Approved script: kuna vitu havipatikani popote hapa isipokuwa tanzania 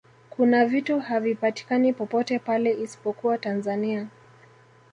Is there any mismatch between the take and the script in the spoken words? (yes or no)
yes